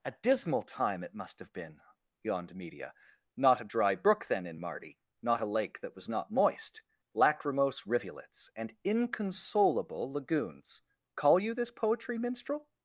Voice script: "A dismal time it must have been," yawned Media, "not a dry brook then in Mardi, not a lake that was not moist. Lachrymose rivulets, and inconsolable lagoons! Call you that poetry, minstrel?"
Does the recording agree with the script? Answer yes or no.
no